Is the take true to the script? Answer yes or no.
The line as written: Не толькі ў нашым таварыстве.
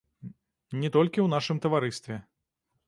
yes